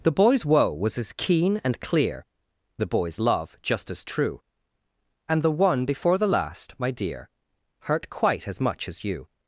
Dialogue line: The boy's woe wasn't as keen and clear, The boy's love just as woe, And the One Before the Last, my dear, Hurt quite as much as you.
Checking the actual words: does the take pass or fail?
fail